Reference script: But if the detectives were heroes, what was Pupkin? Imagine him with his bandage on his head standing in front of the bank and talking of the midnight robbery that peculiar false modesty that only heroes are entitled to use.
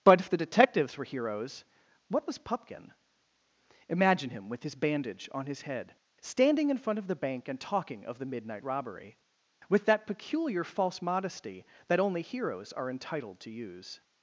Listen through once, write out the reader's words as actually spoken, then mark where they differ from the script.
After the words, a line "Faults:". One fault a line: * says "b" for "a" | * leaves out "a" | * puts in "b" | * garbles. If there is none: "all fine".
But if the detectives were heroes, what was Pupkin? Imagine him with his bandage on his head standing in front of the bank and talking of the midnight robbery with that peculiar false modesty that only heroes are entitled to use.
Faults:
* puts in "with"